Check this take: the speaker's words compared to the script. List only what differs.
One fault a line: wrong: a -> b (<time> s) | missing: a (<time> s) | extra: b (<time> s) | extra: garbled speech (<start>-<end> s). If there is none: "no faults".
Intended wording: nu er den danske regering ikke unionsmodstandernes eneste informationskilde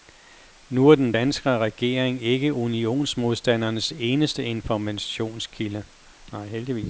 no faults